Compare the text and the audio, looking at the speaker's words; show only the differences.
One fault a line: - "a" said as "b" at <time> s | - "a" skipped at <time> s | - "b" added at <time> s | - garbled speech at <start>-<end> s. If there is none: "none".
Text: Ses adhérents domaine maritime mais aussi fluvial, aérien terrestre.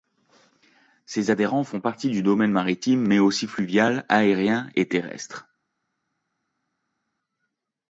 - "font partie du" added at 1.6 s
- "et" added at 4.8 s